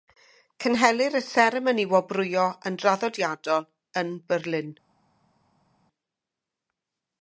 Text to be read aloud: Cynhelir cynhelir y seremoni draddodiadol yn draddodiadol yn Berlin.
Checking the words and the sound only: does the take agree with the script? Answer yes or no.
no